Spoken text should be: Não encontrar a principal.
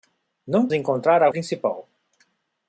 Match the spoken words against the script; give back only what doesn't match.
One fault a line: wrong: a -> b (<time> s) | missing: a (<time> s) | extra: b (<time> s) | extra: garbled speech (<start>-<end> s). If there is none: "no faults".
no faults